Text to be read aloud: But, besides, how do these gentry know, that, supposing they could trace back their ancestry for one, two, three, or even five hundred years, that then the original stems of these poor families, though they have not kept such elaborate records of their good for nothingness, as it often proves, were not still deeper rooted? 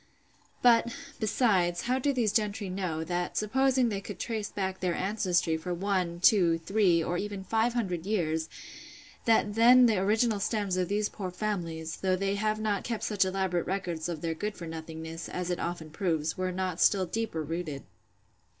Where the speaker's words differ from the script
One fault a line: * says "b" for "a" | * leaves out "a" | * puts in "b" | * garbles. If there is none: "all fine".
all fine